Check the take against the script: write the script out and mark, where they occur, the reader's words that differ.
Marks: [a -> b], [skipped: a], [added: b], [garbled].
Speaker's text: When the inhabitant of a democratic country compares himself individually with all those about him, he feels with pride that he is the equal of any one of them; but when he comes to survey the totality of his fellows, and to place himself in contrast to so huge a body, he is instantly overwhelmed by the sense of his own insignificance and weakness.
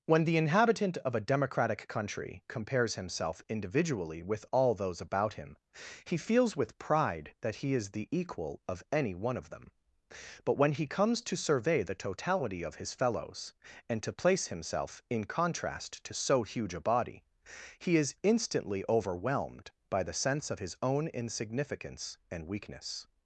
When the inhabitant of a democratic country compares himself individually with all those about him, he feels with pride that he is the equal of any one of them; but when he comes to survey the totality of his fellows, and to place himself in contrast to so huge a body, he is instantly overwhelmed by the sense of his own insignificance and weakness.